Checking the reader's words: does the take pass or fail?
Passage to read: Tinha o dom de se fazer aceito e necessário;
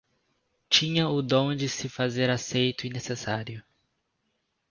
pass